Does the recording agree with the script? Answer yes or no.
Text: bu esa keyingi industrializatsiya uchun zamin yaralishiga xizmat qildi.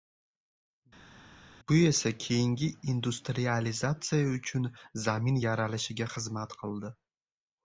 yes